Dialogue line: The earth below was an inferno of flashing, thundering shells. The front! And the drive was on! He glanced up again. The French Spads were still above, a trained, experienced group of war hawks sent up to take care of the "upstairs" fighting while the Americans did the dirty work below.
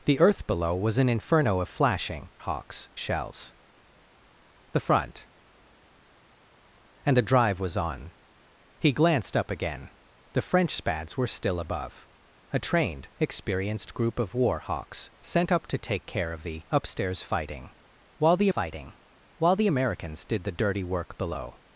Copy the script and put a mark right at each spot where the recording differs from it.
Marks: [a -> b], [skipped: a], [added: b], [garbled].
The earth below was an inferno of flashing, [thundering -> hawks] shells. The front! And the drive was on! He glanced up again. The French Spads were still above, a trained, experienced group of war hawks sent up to take care of the "upstairs" fighting while the [added: fighting while the] Americans did the dirty work below.